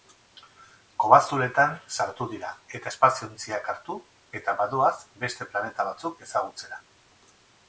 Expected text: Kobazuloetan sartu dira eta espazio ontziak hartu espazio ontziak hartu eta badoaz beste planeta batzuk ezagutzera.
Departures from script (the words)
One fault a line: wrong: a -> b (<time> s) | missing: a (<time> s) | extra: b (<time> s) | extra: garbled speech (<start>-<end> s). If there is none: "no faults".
missing: espazio ontziak hartu (4.0 s)